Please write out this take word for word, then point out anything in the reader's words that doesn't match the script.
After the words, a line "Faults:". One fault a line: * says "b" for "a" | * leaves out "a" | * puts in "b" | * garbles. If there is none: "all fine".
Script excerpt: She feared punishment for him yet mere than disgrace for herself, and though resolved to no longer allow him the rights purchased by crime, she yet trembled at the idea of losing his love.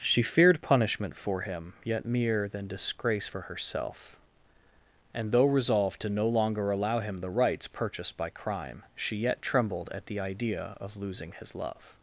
She feared punishment for him yet mere than disgrace for herself, and though resolved to no longer allow him the rights purchased by crime, she yet trembled at the idea of losing his love.
Faults:
all fine